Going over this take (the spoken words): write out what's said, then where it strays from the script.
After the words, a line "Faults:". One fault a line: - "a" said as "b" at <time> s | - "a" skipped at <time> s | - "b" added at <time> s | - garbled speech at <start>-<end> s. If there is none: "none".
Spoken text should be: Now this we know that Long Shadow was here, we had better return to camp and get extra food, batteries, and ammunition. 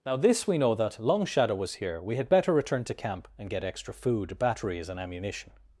Now this we know that Long Shadow was here, we had better return to camp and get extra food, batteries, and ammunition.
Faults:
none